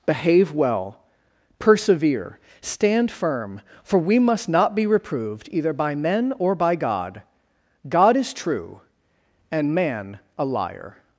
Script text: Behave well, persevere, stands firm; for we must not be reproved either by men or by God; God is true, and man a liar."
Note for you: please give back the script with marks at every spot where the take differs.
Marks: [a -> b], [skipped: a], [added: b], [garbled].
Behave well, persevere, [stands -> stand] firm; for we must not be reproved either by men or by God; God is true, and man a liar."